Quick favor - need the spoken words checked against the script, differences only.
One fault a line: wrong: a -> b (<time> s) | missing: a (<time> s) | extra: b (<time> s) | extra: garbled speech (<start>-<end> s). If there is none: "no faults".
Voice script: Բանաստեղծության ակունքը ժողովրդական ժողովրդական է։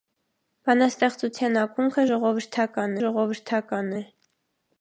no faults